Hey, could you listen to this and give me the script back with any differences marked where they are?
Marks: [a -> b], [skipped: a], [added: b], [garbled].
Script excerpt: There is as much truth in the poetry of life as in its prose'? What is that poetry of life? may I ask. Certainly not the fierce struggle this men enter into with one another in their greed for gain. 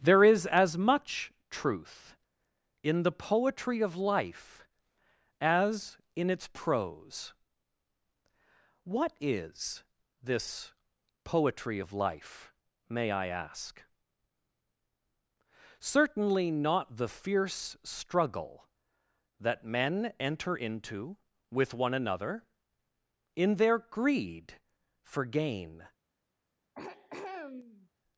There is as much truth in the poetry of life as in its prose'? What is [that -> this] poetry of life? may I ask. Certainly not the fierce struggle [this -> that] men enter into with one another in their greed for gain.